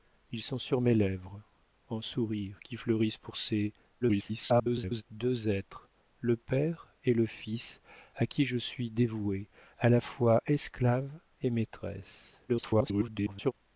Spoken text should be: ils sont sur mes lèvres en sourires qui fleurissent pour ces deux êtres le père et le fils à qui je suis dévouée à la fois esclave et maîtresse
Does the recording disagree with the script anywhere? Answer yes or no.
yes